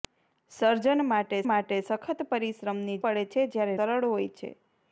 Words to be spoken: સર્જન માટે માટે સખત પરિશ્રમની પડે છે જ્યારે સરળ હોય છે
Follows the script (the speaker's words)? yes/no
yes